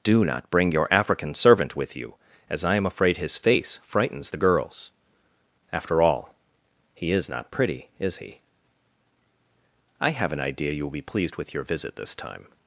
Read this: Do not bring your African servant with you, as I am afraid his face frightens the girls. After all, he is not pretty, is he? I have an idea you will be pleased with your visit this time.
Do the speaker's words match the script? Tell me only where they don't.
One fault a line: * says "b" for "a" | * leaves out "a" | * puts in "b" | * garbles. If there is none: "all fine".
all fine